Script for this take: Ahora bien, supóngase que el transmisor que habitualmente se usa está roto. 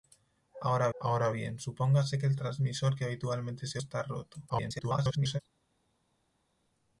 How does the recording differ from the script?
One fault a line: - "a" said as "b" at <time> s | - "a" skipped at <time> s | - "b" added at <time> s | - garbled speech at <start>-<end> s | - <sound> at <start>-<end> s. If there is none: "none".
- "ahora" added at 1.0 s
- "usa" skipped at 3.8 s
- garbled speech at 4.5-5.4 s